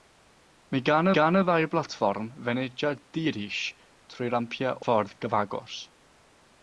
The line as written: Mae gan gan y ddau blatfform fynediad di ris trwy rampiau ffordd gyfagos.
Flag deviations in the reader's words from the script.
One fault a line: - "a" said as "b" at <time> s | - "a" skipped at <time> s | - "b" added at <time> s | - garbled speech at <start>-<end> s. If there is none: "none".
none